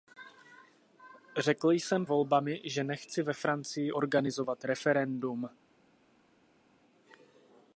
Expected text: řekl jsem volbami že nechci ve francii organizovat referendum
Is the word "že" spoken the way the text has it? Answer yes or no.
yes